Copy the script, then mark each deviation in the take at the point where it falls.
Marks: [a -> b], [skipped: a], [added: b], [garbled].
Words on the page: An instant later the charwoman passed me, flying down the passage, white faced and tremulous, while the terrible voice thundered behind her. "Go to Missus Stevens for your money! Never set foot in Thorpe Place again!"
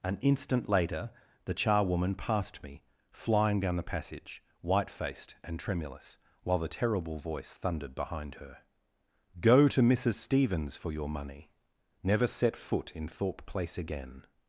An instant later the charwoman passed me, flying down the passage, white faced and tremulous, while the terrible voice thundered behind her. "Go to Missus Stevens for your money! Never set foot in Thorpe Place again!"